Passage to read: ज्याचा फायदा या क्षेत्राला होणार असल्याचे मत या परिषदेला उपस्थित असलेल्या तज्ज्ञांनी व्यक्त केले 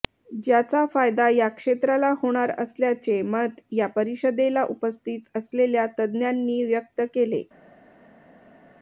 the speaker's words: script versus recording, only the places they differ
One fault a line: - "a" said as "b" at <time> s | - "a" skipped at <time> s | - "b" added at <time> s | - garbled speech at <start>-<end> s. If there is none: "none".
none